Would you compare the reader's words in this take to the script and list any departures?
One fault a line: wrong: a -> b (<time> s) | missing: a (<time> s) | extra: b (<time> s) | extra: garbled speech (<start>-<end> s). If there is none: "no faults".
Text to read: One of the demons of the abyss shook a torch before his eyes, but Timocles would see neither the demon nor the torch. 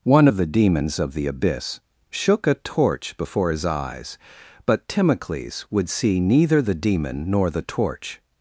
no faults